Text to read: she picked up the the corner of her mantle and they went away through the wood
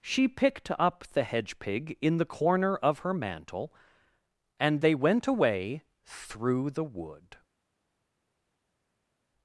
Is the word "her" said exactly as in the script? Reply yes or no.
yes